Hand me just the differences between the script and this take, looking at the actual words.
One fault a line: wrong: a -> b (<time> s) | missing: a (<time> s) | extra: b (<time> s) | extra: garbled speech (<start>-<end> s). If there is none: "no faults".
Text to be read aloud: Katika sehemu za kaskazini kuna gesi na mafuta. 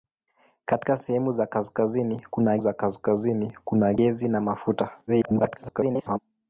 extra: za kaskazini kuna (2.6 s)
extra: garbled speech (5.1-6.2 s)